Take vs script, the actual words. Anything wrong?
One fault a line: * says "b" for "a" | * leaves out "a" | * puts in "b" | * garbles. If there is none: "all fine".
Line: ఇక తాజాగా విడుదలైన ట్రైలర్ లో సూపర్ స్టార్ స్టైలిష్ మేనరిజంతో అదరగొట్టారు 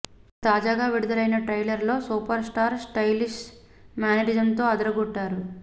all fine